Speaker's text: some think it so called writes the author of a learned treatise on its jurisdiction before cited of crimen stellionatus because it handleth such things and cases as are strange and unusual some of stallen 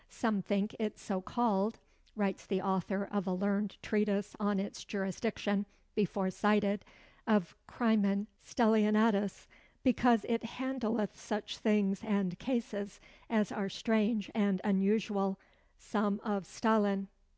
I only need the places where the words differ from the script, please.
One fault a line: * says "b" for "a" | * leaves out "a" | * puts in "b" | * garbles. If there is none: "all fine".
all fine